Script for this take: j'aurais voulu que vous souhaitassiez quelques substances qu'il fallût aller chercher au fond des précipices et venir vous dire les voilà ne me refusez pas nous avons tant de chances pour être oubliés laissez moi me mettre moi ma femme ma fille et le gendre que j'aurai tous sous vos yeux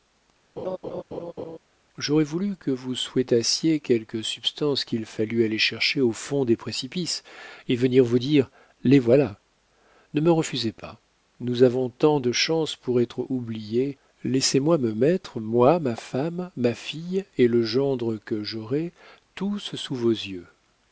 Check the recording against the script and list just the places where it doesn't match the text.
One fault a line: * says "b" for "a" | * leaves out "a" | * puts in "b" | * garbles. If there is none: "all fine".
all fine